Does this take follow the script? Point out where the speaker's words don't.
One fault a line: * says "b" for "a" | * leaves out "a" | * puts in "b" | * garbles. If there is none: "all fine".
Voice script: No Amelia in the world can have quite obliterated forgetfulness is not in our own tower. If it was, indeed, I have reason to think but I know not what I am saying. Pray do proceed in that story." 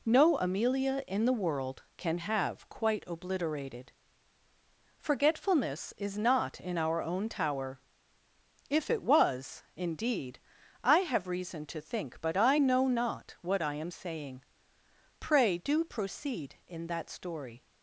all fine